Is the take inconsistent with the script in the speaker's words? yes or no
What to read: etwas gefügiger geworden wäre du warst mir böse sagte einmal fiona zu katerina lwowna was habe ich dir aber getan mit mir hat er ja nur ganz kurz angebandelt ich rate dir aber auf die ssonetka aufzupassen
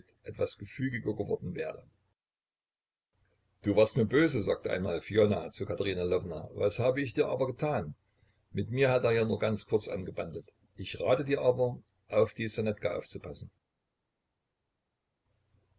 no